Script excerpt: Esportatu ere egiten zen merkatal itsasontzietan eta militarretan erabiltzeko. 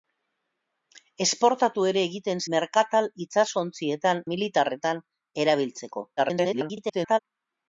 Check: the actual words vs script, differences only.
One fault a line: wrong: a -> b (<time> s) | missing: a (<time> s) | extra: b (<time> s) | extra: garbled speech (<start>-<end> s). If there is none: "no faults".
missing: zen (2.4 s)
missing: eta (4.2 s)
extra: garbled speech (6.2-7.2 s)